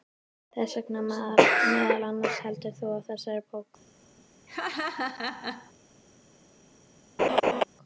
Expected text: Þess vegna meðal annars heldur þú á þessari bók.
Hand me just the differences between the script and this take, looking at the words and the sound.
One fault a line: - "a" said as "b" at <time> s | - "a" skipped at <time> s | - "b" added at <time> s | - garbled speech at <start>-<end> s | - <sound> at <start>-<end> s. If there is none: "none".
- laugh at 4.5-5.7 s
- laugh at 7.2-7.6 s